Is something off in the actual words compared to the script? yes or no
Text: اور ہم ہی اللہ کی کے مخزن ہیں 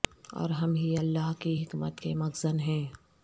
yes